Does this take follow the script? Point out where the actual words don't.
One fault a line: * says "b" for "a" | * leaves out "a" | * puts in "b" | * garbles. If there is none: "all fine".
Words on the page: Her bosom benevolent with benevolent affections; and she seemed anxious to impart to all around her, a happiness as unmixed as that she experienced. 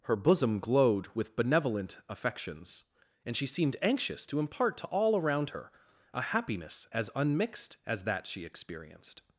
* says "glowed" for "benevolent"